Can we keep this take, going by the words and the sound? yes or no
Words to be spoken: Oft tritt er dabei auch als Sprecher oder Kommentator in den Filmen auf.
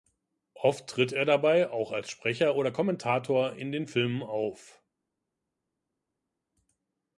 yes